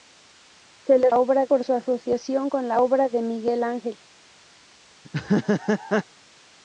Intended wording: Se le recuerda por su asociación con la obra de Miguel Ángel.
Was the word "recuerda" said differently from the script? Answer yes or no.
yes